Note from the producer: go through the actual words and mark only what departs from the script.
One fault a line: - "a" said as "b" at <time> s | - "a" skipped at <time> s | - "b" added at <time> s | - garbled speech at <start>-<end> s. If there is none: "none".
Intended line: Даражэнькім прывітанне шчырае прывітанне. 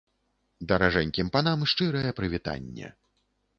- "прывітанне" said as "панам" at 1.4 s